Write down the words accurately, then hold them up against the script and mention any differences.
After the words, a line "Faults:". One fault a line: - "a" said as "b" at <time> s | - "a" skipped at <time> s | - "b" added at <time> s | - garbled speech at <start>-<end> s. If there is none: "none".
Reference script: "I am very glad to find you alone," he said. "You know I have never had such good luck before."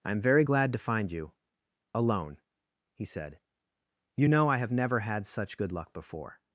"I am very glad to find you alone," he said. "You know I have never had such good luck before."
Faults:
none